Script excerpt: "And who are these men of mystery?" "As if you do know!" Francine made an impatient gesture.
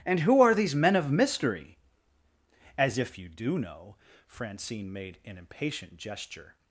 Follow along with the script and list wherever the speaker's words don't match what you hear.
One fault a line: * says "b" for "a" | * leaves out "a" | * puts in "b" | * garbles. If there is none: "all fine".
all fine